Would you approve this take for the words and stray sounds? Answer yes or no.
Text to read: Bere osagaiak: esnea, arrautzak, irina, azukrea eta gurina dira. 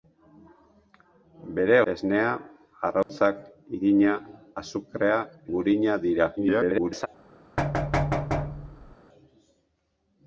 no